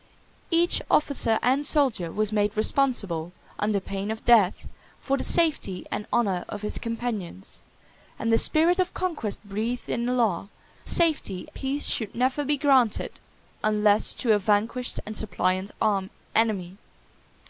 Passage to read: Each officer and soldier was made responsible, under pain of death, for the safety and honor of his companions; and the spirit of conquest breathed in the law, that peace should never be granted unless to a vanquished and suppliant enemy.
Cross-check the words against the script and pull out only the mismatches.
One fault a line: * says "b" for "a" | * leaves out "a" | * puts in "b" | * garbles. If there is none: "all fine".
* says "safety" for "that"